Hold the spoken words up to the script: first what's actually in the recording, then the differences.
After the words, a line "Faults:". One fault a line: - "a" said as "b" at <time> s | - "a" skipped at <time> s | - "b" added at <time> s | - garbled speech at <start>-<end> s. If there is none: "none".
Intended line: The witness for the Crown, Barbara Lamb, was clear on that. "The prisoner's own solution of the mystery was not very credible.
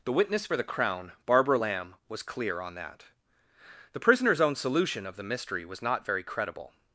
The witness for the Crown, Barbara Lamb, was clear on that. "The prisoner's own solution of the mystery was not very credible.
Faults:
none